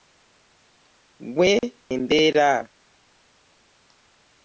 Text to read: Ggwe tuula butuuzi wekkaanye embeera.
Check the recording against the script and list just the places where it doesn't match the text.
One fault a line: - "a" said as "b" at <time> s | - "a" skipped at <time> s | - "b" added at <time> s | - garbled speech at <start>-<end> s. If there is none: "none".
- "tuula butuuzi wekkaanye" skipped at 1.5 s